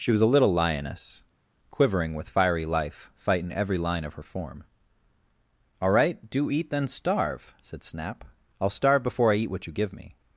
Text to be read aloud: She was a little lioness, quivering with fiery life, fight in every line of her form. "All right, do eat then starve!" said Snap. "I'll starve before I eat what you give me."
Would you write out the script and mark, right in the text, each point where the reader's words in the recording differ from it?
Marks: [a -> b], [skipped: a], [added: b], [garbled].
She was a little lioness, quivering with fiery life, fight in every line of her form. "All right, do eat then starve!" said Snap. "I'll starve before I eat what you give me."